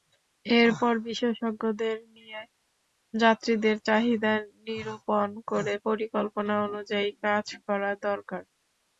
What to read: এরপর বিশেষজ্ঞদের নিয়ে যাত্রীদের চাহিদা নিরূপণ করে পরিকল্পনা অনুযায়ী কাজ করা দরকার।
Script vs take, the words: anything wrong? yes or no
no